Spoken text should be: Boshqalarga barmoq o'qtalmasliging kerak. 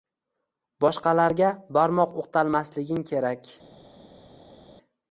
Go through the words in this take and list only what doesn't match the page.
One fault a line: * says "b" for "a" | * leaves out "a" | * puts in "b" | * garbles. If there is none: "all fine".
all fine